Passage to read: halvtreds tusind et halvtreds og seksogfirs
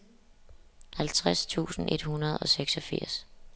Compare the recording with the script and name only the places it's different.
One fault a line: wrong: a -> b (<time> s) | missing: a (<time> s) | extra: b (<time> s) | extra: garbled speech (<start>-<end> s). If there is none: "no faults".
wrong: halvtreds -> hundrede (2.0 s)